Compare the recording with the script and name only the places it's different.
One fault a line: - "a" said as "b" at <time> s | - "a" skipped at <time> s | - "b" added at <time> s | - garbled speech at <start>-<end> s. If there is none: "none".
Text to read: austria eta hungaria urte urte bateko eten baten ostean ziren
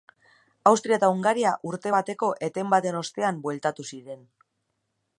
- "urte" skipped at 1.9 s
- "bueltatu" added at 3.5 s